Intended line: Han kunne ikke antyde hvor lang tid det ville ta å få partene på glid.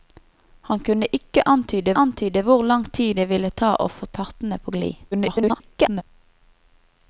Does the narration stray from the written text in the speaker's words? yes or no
yes